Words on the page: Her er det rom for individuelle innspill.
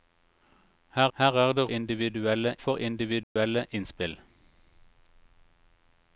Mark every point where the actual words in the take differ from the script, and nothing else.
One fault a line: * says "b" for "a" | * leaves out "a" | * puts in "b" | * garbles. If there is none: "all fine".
* puts in "her"
* says "individuelle" for "rom"